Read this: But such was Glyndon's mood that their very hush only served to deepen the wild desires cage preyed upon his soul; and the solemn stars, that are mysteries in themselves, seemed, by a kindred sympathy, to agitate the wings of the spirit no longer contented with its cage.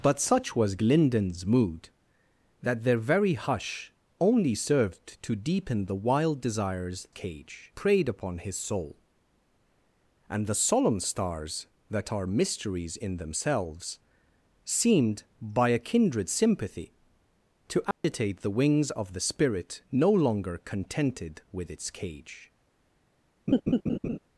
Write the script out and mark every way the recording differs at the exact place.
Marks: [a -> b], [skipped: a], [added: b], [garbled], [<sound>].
But such was Glyndon's mood that their very hush only served to deepen the wild desires cage preyed upon his soul; and the solemn stars, that are mysteries in themselves, seemed, by a kindred sympathy, to agitate [dropout] the wings of the spirit no longer contented with its cage. [laugh]